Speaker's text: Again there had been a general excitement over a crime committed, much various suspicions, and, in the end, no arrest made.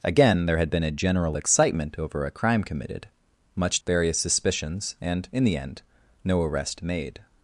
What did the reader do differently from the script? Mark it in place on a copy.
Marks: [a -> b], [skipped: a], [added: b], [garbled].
Again there had been a general excitement over a crime committed, much various suspicions, and, in the end, no arrest made.